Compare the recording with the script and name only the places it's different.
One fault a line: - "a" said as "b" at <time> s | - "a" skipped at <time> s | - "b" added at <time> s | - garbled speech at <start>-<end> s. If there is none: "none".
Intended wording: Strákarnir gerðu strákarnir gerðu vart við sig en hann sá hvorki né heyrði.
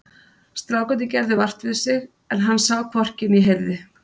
- "strákarnir gerðu" skipped at 1.4 s